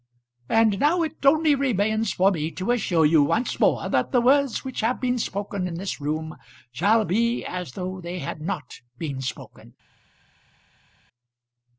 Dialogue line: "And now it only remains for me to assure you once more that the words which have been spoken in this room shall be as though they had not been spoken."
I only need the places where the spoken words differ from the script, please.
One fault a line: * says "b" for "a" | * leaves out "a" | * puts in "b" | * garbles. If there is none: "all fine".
all fine